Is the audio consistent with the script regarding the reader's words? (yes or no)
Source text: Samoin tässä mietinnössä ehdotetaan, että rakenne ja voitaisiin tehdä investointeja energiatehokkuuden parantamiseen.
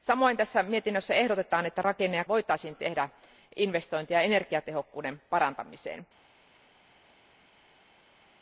yes